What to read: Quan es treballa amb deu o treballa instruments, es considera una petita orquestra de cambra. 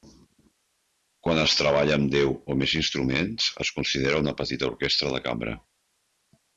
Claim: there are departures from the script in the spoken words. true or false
true